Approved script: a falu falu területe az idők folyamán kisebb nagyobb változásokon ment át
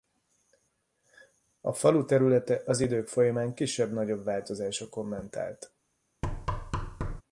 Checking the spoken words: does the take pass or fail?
fail